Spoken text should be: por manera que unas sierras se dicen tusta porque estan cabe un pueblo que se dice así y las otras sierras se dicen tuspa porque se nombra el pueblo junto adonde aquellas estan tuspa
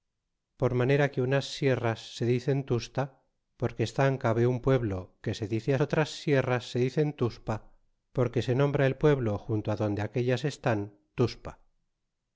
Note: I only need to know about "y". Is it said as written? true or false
false